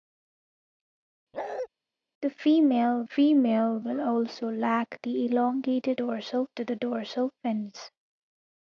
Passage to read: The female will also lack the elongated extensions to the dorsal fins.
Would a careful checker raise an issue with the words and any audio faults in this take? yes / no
yes